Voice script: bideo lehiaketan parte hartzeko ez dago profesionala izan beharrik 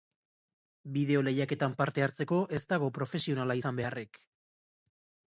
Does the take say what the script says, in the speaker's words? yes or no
yes